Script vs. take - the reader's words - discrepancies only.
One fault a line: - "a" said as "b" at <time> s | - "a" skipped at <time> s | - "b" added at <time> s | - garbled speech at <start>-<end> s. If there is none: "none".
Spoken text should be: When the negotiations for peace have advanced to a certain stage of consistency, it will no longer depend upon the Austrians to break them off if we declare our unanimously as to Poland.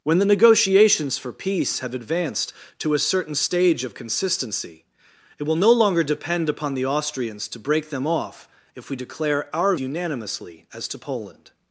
none